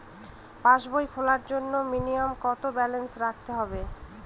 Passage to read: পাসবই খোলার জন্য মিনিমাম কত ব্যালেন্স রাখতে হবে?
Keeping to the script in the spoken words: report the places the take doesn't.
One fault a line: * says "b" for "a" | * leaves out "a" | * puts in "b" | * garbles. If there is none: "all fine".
all fine